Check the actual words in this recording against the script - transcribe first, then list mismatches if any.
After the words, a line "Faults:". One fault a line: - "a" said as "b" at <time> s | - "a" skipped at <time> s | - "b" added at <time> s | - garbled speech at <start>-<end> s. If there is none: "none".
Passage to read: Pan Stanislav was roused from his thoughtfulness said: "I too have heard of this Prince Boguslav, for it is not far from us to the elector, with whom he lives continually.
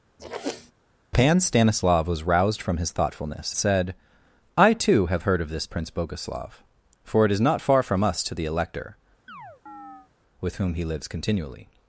Pan Stanislav was roused from his thoughtfulness said: "I too have heard of this Prince Boguslav, for it is not far from us to the elector, with whom he lives continually.
Faults:
none